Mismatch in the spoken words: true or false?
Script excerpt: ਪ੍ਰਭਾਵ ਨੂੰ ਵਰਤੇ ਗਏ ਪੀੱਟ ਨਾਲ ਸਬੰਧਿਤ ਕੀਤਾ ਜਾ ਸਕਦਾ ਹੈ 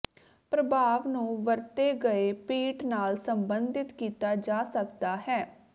false